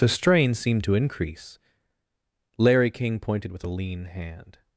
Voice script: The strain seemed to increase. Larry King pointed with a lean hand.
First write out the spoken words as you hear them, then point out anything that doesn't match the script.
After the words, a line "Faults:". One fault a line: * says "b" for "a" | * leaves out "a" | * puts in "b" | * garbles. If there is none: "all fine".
The strain seemed to increase. Larry King pointed with a lean hand.
Faults:
all fine